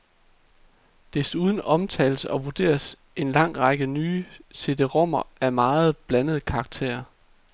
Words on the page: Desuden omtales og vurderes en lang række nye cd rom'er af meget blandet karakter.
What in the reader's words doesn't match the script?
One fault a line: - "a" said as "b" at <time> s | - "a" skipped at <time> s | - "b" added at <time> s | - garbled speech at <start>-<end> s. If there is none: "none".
none